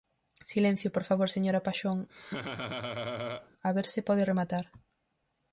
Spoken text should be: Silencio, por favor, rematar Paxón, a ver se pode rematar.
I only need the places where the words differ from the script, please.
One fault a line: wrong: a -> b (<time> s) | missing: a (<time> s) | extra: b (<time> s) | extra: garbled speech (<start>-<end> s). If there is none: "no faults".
wrong: rematar -> señora (1.4 s)